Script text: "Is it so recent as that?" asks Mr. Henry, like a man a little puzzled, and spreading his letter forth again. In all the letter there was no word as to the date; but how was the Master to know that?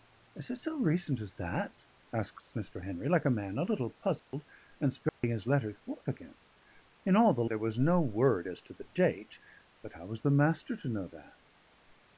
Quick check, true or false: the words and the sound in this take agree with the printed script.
false